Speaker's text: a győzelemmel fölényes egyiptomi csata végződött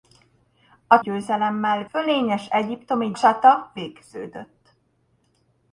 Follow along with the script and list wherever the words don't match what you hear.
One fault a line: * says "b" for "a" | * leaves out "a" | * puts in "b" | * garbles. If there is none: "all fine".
all fine